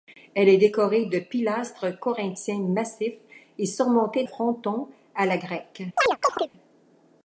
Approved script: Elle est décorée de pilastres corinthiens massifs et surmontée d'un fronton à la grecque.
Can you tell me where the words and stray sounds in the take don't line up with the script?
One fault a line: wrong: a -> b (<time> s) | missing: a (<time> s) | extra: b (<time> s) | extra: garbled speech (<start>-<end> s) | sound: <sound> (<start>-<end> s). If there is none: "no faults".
missing: d'un (4.2 s)
sound: chirp (6.0-6.5 s)